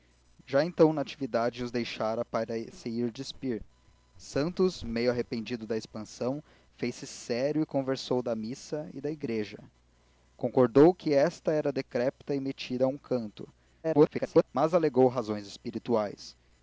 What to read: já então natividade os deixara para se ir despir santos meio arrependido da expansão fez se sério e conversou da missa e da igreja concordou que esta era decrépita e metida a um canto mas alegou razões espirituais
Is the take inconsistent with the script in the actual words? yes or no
yes